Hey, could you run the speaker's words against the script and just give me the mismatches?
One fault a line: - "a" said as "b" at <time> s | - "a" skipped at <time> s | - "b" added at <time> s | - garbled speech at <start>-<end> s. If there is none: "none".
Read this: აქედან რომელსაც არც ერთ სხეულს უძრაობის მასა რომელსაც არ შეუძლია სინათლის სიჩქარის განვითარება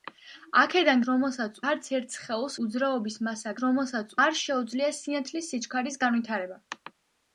none